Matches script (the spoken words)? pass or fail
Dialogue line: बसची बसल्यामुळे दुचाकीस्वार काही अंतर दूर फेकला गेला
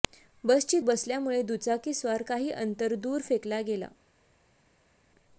pass